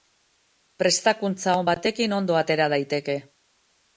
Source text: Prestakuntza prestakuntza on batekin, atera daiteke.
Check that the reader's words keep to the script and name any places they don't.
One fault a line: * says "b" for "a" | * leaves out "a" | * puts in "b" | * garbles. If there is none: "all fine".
* leaves out "prestakuntza"
* puts in "ondo"